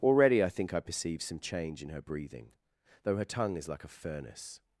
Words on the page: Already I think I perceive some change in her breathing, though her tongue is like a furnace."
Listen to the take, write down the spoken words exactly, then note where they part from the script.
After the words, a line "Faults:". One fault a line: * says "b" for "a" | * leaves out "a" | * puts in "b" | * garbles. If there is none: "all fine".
Already I think I perceive some change in her breathing, though her tongue is like a furnace."
Faults:
all fine